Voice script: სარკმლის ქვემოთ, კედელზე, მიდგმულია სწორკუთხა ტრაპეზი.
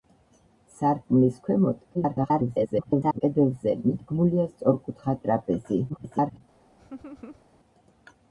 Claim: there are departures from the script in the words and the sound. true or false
true